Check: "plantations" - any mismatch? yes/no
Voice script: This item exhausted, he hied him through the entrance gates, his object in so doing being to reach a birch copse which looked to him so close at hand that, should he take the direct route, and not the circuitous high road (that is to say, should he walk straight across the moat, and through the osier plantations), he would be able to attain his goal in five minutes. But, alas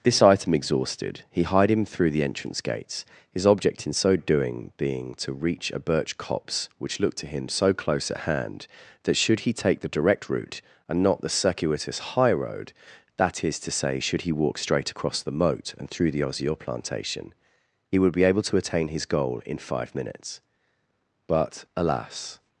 yes